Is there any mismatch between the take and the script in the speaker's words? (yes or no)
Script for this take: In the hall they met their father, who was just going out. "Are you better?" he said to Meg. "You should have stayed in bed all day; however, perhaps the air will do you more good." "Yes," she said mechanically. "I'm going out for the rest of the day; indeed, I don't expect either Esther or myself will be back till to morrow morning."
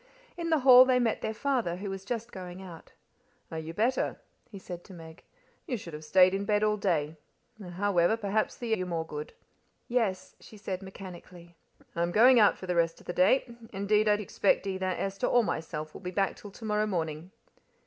yes